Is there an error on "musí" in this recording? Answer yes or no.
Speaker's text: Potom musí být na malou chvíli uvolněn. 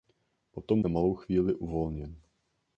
yes